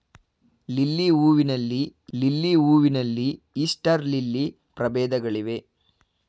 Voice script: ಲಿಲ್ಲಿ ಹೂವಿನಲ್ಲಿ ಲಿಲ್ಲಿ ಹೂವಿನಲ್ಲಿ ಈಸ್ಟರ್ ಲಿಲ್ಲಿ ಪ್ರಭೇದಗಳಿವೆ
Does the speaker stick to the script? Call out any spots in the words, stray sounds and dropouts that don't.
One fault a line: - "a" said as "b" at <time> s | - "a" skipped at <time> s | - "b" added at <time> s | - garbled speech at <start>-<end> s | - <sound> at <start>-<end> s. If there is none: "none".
none